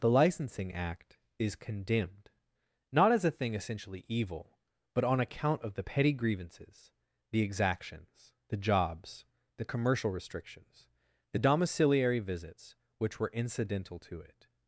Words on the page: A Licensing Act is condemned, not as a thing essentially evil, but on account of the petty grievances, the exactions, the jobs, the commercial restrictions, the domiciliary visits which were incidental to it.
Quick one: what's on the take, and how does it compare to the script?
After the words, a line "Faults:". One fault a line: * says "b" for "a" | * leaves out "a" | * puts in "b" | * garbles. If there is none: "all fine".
The Licensing Act is condemned, not as a thing essentially evil, but on account of the petty grievances, the exactions, the jobs, the commercial restrictions, the domiciliary visits which were incidental to it.
Faults:
* says "The" for "A"